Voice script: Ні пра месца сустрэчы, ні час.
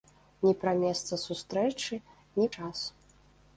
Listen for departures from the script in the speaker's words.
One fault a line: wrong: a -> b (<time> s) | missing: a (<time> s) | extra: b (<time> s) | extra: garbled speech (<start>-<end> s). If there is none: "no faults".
no faults